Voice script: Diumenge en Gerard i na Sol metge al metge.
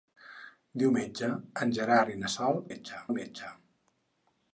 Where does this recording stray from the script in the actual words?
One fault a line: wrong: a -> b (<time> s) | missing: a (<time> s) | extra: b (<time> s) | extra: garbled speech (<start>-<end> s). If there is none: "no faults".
no faults